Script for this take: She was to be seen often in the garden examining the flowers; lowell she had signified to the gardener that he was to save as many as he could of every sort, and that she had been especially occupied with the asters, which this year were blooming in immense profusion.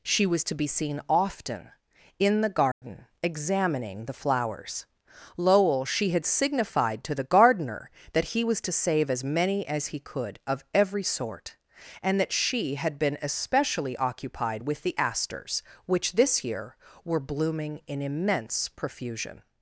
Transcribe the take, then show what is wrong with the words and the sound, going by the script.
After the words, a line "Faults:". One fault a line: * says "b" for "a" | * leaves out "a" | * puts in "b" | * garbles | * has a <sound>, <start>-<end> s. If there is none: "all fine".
She was to be seen often in the garden examining the flowers; lowell she had signified to the gardener that he was to save as many as he could of every sort, and that she had been especially occupied with the asters, which this year were blooming in immense profusion.
Faults:
* has a dropout, 2.7-2.8 s